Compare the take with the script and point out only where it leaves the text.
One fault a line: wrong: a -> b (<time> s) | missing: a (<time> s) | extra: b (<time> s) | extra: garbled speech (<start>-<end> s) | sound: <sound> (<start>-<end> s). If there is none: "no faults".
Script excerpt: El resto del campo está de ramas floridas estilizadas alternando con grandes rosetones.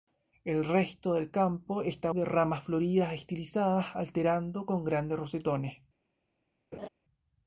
sound: laugh (6.7-6.9 s)